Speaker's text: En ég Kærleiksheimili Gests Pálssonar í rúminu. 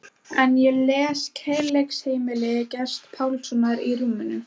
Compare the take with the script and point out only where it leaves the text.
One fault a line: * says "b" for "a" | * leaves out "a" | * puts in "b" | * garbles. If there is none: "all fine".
* puts in "les"